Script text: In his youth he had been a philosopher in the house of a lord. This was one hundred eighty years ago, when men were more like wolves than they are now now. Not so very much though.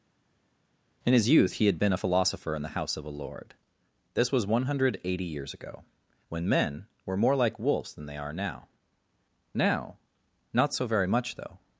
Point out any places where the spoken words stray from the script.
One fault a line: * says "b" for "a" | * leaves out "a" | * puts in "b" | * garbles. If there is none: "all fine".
all fine